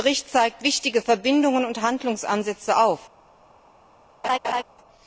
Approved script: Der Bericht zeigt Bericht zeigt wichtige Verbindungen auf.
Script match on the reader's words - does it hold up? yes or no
no